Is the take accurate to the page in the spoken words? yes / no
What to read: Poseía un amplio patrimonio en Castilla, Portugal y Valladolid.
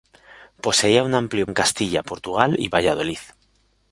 no